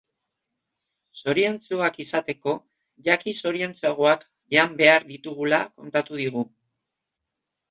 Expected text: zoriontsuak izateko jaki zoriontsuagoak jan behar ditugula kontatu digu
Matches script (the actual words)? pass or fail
pass